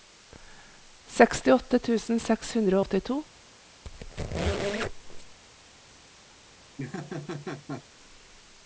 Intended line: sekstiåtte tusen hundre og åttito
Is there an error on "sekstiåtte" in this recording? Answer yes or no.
no